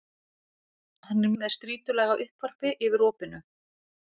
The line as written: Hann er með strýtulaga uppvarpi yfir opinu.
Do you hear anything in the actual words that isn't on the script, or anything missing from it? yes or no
no